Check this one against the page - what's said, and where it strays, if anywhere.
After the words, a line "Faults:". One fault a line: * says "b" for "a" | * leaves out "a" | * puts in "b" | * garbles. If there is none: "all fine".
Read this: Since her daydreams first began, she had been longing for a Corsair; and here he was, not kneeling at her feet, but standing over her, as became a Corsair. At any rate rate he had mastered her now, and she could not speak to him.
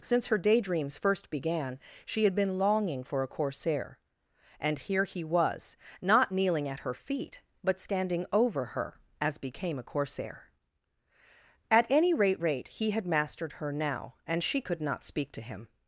Since her daydreams first began, she had been longing for a Corsair; and here he was, not kneeling at her feet, but standing over her, as became a Corsair. At any rate rate he had mastered her now, and she could not speak to him.
Faults:
all fine